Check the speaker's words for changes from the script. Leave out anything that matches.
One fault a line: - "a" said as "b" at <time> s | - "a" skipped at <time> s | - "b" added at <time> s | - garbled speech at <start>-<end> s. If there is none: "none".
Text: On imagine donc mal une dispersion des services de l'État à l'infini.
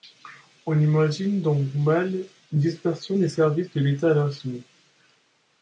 none